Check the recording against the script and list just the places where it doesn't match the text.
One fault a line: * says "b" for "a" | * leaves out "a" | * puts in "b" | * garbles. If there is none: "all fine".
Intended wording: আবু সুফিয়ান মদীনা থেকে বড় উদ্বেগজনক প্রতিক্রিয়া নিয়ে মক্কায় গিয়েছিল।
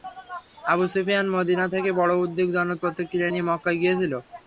all fine